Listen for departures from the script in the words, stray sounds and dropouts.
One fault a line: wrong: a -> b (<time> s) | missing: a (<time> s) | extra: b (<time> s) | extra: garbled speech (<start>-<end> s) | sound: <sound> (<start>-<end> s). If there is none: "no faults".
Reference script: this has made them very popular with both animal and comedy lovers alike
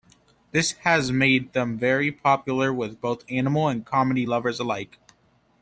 no faults